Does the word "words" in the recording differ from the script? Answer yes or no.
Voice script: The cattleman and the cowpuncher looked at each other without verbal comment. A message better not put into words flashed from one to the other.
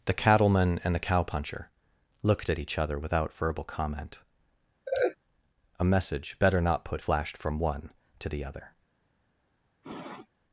yes